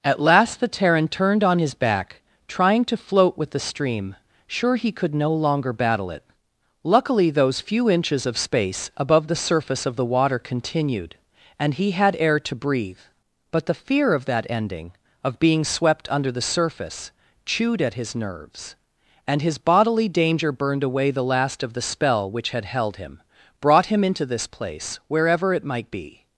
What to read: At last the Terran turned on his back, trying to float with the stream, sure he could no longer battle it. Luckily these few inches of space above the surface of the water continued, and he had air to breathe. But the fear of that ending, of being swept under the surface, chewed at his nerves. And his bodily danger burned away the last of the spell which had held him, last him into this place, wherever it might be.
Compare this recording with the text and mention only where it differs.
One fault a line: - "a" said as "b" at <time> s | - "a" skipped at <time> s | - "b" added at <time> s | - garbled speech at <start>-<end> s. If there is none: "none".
- "these" said as "those" at 7.3 s
- "last" said as "brought" at 23.6 s